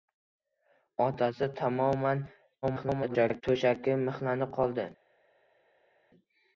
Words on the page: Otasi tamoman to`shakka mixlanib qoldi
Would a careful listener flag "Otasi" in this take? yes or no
no